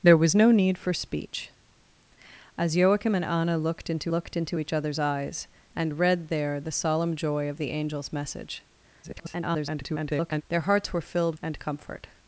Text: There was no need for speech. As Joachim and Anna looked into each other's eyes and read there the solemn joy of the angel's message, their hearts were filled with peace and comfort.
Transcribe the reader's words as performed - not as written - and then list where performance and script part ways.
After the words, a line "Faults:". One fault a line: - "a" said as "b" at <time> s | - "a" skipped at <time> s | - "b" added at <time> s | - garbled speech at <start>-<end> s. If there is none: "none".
There was no need for speech. As Joachim and Anna looked into looked into each other's eyes and read there the solemn joy of the angel's message, [garbled] their hearts were filled and comfort.
Faults:
- "looked into" added at 4.1 s
- garbled speech at 9.0-10.4 s
- "with peace" skipped at 11.4 s